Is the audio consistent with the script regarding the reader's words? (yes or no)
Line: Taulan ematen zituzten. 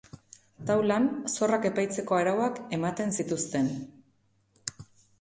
no